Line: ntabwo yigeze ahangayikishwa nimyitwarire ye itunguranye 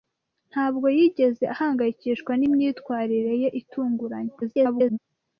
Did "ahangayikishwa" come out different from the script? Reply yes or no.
no